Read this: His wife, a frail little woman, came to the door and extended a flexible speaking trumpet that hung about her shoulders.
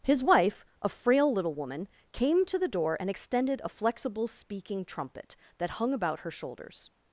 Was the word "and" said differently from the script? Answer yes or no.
no